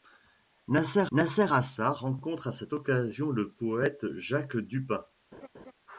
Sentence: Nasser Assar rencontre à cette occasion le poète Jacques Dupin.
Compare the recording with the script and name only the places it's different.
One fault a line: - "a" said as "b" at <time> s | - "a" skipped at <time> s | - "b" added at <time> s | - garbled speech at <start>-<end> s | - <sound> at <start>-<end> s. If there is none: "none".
- "nasser" added at 1.1 s
- laugh at 5.3-5.7 s